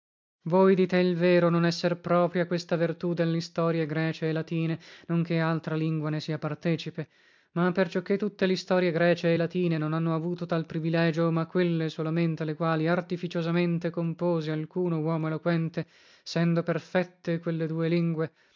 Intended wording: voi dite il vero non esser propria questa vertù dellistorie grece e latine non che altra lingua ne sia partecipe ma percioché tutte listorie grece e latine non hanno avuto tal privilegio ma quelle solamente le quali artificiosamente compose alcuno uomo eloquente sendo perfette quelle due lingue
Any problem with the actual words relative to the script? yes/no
no